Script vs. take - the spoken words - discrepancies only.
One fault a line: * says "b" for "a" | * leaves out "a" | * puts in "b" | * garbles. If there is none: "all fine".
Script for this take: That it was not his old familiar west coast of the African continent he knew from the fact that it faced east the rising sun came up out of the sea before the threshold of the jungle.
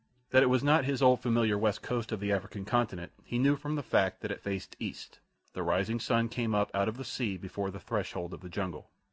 all fine